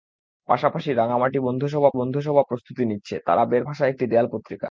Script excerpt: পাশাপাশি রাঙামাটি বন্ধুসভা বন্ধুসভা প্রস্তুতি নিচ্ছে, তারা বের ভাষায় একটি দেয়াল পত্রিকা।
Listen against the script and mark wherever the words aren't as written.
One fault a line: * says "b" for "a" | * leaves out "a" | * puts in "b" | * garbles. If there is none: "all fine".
all fine